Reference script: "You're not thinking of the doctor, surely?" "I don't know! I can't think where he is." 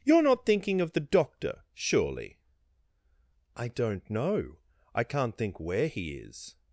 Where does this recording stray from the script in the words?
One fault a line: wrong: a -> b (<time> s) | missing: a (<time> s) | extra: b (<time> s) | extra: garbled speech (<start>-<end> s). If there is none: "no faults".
no faults